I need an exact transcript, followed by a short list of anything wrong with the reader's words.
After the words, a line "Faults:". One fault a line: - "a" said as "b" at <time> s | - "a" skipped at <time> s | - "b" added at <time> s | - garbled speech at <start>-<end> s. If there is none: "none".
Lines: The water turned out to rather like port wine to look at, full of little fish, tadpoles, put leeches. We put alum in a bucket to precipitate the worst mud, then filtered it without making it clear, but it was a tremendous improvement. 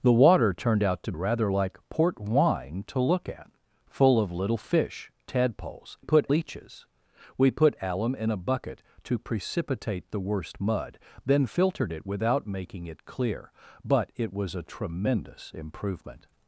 The water turned out to rather like port wine to look at, full of little fish, tadpoles, put leeches. We put alum in a bucket to precipitate the worst mud, then filtered it without making it clear, but it was a tremendous improvement.
Faults:
none